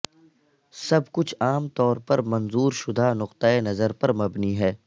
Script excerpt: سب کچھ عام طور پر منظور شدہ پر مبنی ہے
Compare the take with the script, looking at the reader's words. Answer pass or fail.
fail